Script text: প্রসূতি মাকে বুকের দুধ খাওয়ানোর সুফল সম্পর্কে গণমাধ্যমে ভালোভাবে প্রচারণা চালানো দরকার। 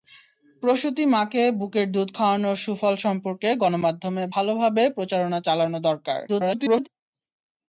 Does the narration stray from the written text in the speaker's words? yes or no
yes